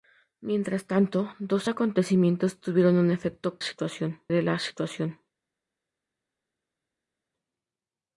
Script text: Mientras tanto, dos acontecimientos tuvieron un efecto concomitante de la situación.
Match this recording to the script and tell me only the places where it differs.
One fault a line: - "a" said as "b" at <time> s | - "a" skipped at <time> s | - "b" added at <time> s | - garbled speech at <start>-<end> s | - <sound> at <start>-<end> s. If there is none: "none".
- "concomitante" said as "situación" at 3.6 s